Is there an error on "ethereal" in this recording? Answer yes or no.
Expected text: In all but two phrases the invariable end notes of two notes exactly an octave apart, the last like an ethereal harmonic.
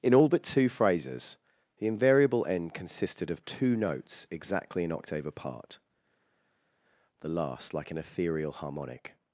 no